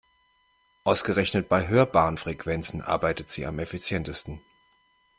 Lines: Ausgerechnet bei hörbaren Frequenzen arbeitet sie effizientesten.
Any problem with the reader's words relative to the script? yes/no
yes